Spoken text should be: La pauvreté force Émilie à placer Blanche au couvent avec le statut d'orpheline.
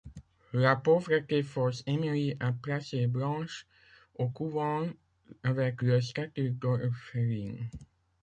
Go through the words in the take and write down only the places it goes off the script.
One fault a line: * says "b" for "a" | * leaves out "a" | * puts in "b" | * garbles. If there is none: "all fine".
all fine